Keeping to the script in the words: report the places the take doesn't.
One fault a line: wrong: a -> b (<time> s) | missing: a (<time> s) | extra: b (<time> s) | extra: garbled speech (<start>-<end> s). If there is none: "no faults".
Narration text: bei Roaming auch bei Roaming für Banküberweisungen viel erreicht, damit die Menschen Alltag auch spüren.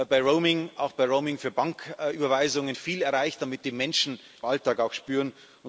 no faults